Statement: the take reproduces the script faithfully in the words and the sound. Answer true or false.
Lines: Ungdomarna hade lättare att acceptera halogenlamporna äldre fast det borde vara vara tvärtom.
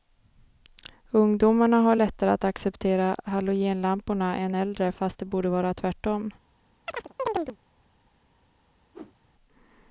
false